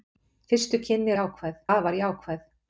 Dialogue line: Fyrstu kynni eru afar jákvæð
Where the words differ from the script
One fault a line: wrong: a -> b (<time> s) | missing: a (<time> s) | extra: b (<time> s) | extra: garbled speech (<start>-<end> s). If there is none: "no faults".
wrong: eru -> jákvæð (1.2 s)